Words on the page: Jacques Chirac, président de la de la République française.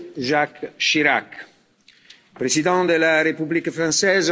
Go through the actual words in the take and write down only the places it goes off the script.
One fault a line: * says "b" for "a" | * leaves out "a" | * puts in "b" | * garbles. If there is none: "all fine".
* leaves out "de la"